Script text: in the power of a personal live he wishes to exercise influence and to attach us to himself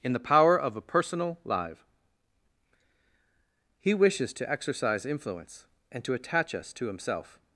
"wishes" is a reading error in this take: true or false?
false